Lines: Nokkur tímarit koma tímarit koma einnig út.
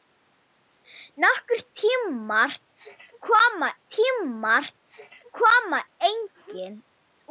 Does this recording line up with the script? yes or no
yes